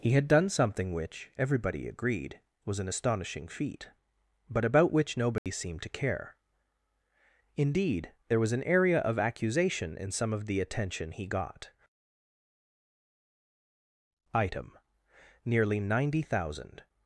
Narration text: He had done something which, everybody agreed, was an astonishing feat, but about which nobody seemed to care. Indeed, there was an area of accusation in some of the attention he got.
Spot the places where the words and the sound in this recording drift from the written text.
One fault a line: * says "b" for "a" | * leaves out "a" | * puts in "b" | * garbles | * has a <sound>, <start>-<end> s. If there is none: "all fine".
* has a dropout, 5.4-5.5 s
* puts in "Item nearly ninety thousand"